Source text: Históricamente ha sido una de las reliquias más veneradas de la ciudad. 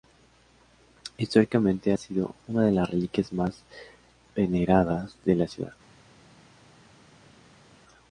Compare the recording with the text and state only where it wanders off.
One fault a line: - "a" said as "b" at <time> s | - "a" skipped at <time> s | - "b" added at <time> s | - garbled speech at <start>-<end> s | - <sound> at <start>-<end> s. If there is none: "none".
none